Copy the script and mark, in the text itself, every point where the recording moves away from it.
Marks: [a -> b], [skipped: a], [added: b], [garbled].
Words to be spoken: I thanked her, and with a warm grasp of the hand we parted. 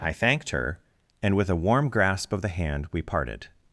I thanked her, and with a warm grasp of the hand we parted.